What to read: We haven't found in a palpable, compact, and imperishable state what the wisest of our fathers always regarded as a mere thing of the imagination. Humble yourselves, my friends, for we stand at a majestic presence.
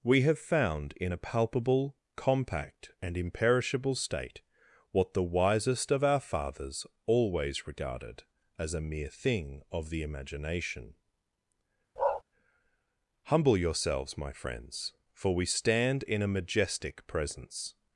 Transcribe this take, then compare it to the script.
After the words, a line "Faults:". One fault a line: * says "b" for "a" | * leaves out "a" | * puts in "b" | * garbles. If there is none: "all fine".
We have found in a palpable, compact, and imperishable state what the wisest of our fathers always regarded as a mere thing of the imagination. Humble yourselves, my friends, for we stand in a majestic presence.
Faults:
* says "have" for "haven't"
* says "in" for "at"